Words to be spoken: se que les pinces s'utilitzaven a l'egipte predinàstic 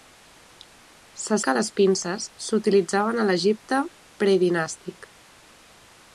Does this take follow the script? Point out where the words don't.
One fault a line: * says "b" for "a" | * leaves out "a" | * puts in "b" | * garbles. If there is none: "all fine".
all fine